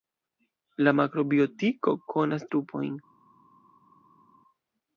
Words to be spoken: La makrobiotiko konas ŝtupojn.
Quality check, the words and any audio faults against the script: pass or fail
pass